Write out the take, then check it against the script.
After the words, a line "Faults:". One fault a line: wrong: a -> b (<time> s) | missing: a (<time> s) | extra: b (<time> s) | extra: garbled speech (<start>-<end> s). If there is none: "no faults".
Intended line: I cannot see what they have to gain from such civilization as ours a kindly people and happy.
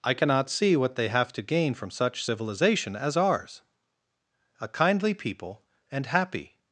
I cannot see what they have to gain from such civilization as ours a kindly people and happy.
Faults:
no faults